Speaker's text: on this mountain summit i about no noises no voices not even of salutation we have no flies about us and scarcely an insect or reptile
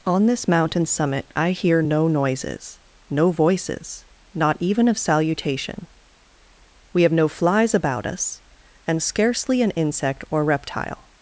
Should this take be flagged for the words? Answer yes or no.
yes